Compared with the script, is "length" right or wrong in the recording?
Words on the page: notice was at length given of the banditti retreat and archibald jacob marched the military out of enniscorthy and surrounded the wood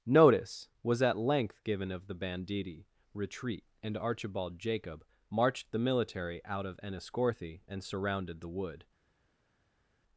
right